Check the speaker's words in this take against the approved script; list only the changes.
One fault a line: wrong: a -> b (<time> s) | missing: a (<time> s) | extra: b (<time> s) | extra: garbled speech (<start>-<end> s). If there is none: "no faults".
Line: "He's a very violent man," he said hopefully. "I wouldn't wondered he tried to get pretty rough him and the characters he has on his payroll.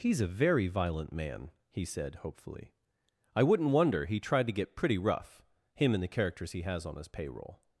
wrong: wondered -> wonder (3.7 s)